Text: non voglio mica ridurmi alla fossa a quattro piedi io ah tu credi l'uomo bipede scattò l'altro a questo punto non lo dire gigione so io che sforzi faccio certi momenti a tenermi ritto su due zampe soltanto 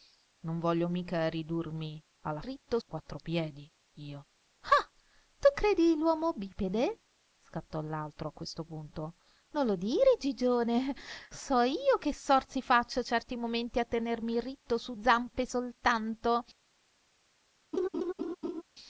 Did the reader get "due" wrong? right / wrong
wrong